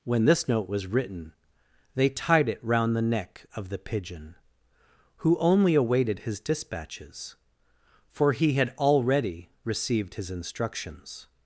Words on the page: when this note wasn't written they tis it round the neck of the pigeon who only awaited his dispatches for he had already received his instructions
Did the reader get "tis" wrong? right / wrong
wrong